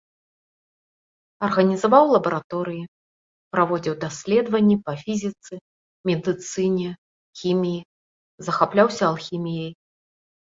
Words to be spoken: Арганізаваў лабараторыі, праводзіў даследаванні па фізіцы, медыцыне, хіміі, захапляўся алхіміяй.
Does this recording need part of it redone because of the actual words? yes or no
no